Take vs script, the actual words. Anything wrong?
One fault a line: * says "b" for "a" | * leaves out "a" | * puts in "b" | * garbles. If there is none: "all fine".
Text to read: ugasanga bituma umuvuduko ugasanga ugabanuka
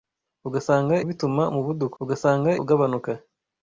all fine